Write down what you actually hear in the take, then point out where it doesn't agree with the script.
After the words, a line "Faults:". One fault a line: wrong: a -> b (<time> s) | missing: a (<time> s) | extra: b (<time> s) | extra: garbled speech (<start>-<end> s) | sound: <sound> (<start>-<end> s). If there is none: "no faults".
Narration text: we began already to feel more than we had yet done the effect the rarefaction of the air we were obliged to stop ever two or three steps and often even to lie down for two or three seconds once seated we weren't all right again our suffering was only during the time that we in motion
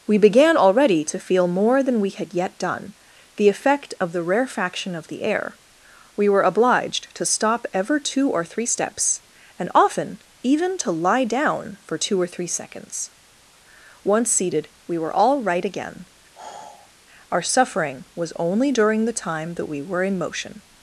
we began already to feel more than we had yet done the effect of the rarefaction of the air we were obliged to stop ever two or three steps and often even to lie down for two or three seconds once seated we were all right again our suffering was only during the time that we were in motion
Faults:
extra: of (4.0 s)
wrong: weren't -> were (15.0 s)
sound: sigh (16.3-16.9 s)
extra: were (19.8 s)